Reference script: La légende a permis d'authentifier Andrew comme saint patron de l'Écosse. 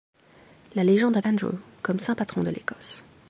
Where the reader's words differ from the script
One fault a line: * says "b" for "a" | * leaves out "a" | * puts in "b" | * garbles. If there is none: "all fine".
* leaves out "permis d'authentifier"